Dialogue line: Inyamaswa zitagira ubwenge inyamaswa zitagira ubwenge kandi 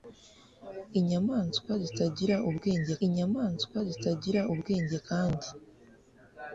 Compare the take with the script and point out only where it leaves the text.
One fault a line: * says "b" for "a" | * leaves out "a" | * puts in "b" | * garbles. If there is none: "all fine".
all fine